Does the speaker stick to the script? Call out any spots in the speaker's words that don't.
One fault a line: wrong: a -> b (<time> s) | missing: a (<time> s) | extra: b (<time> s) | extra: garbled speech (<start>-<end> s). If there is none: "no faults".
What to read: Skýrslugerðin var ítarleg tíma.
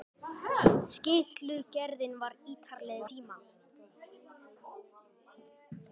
no faults